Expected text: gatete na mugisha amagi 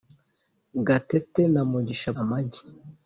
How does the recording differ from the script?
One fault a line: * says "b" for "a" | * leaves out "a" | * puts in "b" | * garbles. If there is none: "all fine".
all fine